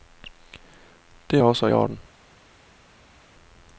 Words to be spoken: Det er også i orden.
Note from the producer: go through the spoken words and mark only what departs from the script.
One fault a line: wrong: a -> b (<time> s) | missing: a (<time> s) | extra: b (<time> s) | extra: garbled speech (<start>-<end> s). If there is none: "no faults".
missing: i (1.7 s)